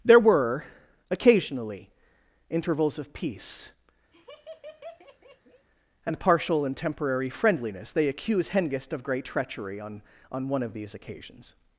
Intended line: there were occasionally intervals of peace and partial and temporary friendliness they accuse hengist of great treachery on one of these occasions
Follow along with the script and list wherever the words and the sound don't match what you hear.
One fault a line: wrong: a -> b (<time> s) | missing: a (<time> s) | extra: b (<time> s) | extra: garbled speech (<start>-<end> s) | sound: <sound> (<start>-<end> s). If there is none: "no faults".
sound: laugh (4.1-5.7 s)
extra: on (10.3 s)